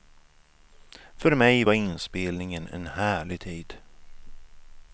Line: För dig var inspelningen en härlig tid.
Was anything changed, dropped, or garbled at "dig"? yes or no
yes